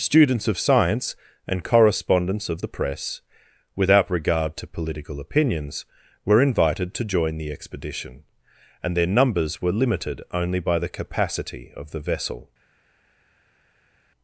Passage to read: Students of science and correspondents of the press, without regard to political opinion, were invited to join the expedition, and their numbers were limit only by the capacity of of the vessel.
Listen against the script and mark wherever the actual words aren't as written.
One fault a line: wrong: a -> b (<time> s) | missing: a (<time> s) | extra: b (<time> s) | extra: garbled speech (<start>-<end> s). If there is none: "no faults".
wrong: opinion -> opinions (5.2 s)
wrong: limit -> limited (9.8 s)
missing: of (11.9 s)